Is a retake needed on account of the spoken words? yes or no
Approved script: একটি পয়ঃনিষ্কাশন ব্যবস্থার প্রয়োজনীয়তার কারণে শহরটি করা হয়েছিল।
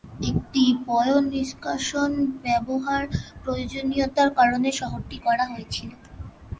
no